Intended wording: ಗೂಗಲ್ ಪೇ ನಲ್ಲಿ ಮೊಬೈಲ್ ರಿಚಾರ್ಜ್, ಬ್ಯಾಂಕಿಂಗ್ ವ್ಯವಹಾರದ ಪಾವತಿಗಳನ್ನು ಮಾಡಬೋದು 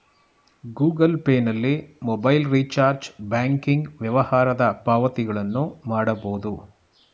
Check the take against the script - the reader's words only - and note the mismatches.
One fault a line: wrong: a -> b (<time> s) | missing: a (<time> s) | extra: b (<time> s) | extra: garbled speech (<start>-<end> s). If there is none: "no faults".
no faults